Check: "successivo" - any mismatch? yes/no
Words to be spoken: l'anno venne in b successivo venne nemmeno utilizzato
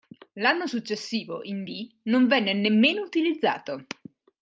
yes